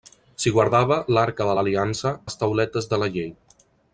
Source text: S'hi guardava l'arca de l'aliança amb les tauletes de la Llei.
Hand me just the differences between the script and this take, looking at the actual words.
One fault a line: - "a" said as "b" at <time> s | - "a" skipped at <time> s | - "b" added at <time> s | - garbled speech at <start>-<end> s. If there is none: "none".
- "amb" skipped at 2.1 s